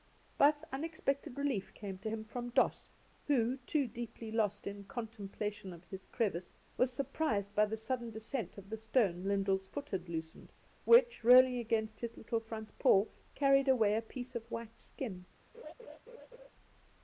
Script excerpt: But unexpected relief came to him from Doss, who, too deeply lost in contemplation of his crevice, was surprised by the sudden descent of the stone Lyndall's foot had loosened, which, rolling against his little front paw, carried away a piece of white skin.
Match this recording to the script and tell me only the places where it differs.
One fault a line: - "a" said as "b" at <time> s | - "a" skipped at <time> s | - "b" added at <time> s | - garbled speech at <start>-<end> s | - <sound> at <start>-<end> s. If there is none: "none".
- laugh at 15.5-16.5 s